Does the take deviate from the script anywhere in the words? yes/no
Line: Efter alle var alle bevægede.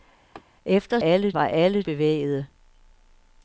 no